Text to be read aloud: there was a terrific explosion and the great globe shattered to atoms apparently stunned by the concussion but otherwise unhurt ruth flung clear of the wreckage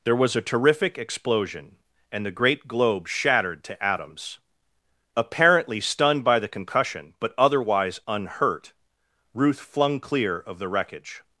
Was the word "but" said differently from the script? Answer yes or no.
no